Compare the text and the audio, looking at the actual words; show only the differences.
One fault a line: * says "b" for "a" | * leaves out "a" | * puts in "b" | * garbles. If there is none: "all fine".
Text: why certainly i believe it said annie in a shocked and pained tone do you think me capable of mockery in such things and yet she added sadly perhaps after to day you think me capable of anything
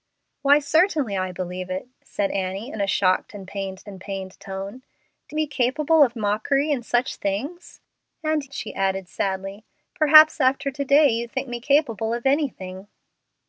* puts in "and pained"
* leaves out "you think"
* leaves out "yet"